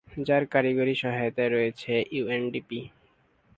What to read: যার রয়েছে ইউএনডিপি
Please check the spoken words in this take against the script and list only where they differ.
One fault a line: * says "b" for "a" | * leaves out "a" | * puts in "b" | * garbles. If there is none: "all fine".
* puts in "কারিগরি সহায়তায়"